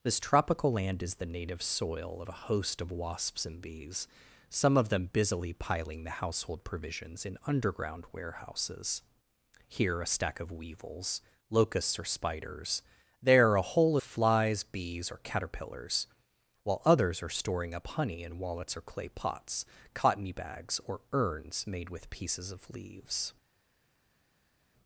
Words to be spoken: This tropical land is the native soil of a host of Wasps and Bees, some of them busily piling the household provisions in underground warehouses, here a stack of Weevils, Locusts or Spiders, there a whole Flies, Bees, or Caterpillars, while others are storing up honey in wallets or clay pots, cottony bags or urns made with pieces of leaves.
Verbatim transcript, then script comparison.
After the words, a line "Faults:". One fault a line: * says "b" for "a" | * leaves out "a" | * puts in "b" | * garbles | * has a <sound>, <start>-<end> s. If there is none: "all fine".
This tropical land is the native soil of a host of Wasps and Bees, some of them busily piling the household provisions in underground warehouses, here a stack of Weevils, Locusts or Spiders, there a whole Flies, Bees, or Caterpillars, while others are storing up honey in wallets or clay pots, cottony bags or urns made with pieces of leaves.
Faults:
all fine